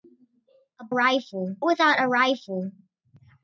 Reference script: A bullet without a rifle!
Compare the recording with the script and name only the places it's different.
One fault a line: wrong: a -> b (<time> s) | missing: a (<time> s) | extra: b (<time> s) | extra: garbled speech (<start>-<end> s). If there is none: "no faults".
wrong: bullet -> rifle (0.9 s)